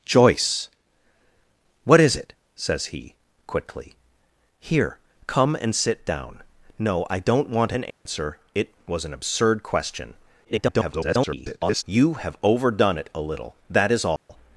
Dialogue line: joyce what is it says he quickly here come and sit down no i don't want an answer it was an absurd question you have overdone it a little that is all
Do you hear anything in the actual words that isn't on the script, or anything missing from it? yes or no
yes